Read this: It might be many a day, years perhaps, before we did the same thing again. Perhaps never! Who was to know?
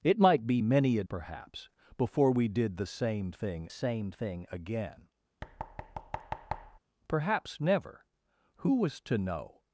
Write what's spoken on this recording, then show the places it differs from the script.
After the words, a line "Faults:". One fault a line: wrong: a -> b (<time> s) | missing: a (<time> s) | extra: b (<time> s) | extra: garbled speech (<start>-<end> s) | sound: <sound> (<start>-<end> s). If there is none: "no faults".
It might be many a perhaps, before we did the same thing same thing again. Perhaps never! Who was to know?
Faults:
missing: day years (1.0 s)
extra: same thing (3.7 s)
sound: thud (5.4-6.8 s)